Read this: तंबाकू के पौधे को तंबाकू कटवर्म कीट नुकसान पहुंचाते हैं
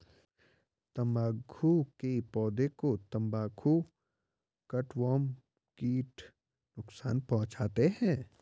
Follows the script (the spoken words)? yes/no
yes